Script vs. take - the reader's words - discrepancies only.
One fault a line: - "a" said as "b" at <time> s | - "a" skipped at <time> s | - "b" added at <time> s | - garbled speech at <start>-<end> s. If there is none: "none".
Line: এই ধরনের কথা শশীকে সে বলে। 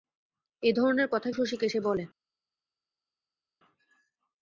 none